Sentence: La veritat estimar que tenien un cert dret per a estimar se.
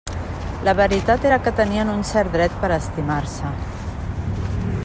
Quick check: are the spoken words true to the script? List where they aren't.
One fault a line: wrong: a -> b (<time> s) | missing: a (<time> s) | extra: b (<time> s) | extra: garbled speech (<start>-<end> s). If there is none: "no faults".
wrong: estimar -> era (1.3 s)